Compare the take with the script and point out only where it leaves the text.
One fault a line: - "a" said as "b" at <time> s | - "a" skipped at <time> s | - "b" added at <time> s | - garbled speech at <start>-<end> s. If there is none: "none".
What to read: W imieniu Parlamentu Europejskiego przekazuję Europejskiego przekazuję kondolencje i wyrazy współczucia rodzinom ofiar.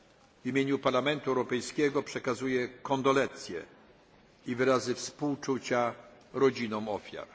- "Europejskiego przekazuję" skipped at 2.7 s